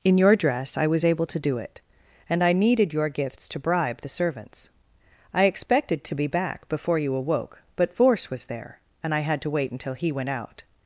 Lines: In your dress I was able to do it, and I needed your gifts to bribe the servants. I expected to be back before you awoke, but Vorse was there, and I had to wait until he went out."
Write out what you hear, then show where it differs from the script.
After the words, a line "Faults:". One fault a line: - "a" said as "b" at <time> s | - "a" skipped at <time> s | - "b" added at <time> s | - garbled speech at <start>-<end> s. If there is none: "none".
In your dress I was able to do it, and I needed your gifts to bribe the servants. I expected to be back before you awoke, but Vorse was there, and I had to wait until he went out."
Faults:
none